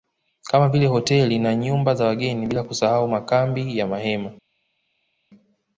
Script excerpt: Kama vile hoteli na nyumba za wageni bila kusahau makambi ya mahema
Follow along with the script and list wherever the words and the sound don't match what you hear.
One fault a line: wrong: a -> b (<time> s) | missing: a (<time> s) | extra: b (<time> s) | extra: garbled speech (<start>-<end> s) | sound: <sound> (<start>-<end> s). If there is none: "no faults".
no faults